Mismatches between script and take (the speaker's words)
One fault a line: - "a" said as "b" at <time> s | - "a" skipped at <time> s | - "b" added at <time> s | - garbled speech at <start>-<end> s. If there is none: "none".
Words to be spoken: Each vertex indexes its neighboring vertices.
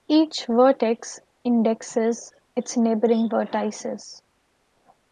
none